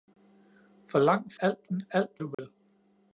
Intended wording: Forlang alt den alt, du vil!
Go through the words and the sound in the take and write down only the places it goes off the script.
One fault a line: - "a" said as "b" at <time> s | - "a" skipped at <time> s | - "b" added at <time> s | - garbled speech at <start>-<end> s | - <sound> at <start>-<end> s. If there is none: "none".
- dropout at 2.3-2.4 s